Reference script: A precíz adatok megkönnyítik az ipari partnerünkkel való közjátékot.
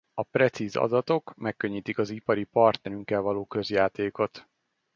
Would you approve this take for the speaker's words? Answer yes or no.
yes